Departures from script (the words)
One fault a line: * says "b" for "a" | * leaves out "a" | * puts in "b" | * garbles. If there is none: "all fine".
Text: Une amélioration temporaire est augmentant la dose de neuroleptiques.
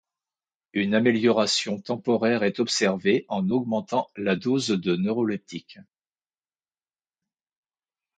* puts in "observée en"